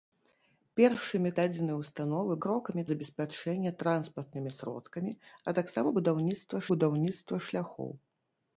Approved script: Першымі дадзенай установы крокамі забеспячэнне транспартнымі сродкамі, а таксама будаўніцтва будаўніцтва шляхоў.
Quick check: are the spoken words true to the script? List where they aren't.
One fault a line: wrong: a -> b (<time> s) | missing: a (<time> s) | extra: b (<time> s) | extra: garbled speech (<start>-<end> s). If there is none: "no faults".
no faults